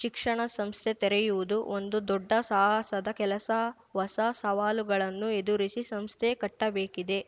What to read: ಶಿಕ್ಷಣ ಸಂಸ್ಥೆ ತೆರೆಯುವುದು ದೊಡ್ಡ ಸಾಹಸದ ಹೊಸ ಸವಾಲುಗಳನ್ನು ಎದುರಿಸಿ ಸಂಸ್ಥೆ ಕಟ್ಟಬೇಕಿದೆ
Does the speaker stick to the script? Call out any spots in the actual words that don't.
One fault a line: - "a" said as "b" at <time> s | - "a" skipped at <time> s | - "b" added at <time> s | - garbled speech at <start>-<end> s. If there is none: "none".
- "ಒಂದು" added at 1.8 s
- "ಕೆಲಸ" added at 3.2 s